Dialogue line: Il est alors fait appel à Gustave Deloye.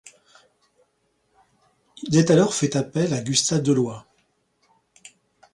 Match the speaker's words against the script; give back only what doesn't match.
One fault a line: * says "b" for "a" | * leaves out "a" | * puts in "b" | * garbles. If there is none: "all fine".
all fine